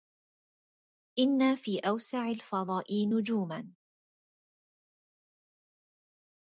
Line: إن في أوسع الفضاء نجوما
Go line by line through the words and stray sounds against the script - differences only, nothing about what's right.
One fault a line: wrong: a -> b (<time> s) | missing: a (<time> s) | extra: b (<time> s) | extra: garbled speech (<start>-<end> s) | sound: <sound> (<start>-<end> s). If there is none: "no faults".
no faults